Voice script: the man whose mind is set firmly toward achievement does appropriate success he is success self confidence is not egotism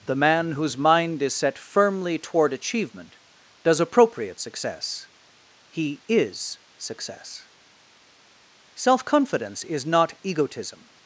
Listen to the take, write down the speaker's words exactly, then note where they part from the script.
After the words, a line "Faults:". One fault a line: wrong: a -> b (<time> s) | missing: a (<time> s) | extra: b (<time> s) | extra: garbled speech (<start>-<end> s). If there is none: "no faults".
the man whose mind is set firmly toward achievement does appropriate success he is success self confidence is not egotism
Faults:
no faults